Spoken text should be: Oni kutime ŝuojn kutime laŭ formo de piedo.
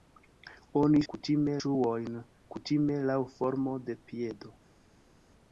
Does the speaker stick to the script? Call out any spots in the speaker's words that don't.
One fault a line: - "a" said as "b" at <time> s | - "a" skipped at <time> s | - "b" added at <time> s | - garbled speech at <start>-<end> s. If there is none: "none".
none